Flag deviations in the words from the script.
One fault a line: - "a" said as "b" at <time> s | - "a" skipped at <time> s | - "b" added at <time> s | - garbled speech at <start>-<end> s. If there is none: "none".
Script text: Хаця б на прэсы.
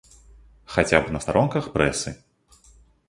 - "старонках" added at 1.2 s